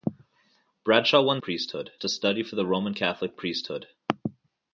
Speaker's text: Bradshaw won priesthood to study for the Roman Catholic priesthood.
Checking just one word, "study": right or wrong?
right